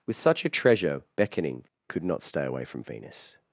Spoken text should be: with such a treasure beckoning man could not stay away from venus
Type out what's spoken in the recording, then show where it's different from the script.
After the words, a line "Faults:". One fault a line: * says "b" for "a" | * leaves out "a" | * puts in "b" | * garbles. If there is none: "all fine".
with such a treasure beckoning could not stay away from venus
Faults:
* leaves out "man"